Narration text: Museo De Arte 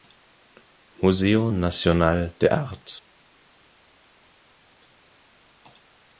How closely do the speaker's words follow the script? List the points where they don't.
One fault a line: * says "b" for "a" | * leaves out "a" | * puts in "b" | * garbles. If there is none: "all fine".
* puts in "Nacional"